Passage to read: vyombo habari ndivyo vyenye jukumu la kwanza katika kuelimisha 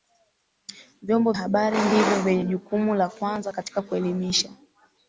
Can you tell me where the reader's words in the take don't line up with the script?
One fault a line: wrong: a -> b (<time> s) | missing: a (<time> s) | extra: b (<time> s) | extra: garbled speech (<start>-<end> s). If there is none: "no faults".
no faults